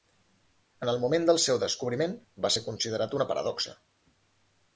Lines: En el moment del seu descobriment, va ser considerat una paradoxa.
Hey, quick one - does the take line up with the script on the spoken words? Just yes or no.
yes